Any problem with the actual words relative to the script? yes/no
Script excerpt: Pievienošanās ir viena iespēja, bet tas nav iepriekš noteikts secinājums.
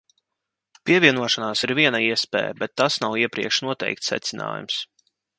no